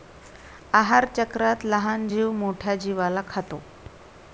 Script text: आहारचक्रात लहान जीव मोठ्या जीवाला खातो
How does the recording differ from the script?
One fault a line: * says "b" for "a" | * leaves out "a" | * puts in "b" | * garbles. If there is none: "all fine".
all fine